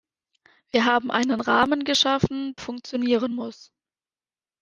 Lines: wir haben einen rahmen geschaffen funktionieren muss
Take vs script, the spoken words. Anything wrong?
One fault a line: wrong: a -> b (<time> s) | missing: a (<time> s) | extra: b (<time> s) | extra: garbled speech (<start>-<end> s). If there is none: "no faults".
no faults